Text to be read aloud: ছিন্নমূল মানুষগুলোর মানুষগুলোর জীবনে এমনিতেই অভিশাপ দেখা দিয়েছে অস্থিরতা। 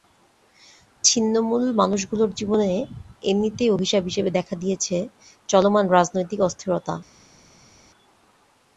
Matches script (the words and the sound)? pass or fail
fail